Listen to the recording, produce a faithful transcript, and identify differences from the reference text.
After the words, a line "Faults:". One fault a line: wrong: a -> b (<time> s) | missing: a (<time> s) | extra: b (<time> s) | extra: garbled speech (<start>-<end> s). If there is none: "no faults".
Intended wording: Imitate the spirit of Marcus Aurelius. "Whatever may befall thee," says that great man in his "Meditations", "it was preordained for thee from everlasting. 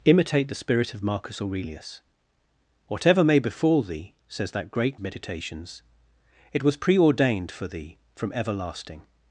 Imitate the spirit of Marcus Aurelius. "Whatever may befall thee," says that great "Meditations", "it was preordained for thee from everlasting.
Faults:
missing: man in his (5.0 s)